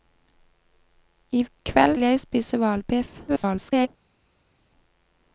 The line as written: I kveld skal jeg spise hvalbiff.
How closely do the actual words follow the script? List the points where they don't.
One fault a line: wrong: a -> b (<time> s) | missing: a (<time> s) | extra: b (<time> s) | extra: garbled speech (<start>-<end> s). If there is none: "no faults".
missing: skal (2.0 s)
extra: garbled speech (3.3-3.9 s)